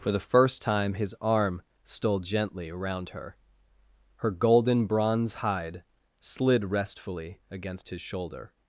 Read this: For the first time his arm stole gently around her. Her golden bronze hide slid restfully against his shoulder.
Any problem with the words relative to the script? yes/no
no